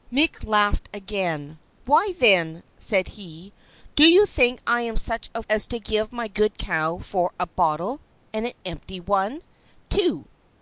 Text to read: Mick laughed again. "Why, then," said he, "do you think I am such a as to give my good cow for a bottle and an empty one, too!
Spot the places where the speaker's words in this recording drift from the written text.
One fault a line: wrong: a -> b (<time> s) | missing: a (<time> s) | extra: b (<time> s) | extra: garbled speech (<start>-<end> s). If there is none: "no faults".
no faults